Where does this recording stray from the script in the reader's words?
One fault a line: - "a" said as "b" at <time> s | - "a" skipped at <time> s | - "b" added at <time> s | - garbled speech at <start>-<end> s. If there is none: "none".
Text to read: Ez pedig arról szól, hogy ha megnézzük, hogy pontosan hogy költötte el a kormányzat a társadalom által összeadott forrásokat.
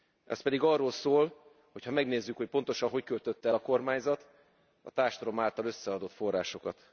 none